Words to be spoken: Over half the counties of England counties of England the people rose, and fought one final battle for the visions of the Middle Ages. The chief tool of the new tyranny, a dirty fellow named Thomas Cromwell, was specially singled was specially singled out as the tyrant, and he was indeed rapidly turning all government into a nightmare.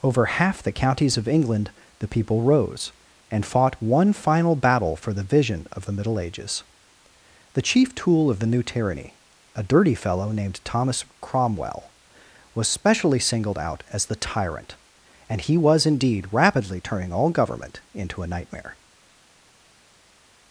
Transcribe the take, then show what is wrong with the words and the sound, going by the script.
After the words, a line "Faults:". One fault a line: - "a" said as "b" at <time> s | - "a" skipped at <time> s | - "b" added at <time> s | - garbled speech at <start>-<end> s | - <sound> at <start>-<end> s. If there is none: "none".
Over half the counties of England the people rose, and fought one final battle for the vision of the Middle Ages. The chief tool of the new tyranny, a dirty fellow named Thomas Cromwell, was specially singled out as the tyrant, and he was indeed rapidly turning all government into a nightmare.
Faults:
- "counties of England" skipped at 1.7 s
- "visions" said as "vision" at 5.2 s
- "was specially singled" skipped at 13.6 s